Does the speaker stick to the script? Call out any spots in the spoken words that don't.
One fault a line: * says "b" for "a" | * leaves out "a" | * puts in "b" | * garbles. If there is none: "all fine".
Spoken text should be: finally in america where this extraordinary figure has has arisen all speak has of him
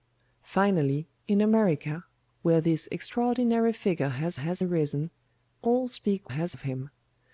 all fine